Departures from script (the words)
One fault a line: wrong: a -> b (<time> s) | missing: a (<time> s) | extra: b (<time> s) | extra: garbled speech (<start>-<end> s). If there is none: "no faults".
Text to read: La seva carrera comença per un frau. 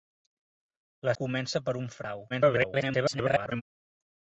missing: seva carrera (1.1 s)
extra: garbled speech (2.3-3.6 s)